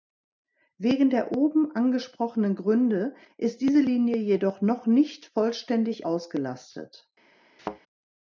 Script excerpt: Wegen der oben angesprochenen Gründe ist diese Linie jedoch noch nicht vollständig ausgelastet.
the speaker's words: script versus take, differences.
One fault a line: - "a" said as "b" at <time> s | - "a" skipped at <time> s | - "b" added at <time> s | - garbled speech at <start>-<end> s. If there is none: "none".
none